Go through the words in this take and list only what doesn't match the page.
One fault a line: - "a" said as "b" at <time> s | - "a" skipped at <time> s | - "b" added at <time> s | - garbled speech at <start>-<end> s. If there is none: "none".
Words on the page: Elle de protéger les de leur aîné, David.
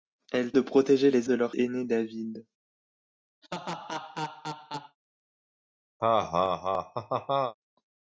none